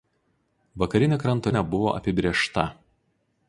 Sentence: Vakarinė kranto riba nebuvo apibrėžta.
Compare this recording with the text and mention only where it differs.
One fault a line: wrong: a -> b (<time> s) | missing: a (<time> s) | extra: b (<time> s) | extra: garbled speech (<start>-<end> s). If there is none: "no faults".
missing: riba (1.5 s)